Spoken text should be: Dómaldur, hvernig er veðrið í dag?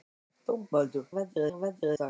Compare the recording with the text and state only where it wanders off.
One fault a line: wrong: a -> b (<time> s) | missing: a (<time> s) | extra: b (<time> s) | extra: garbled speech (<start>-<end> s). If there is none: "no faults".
wrong: hvernig -> veðrið (1.2 s)
missing: í (1.9 s)